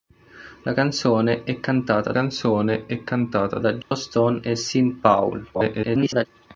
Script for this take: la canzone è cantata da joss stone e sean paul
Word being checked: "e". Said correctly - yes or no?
yes